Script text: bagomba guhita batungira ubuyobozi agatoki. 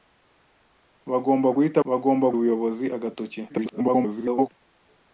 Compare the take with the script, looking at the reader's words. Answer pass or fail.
fail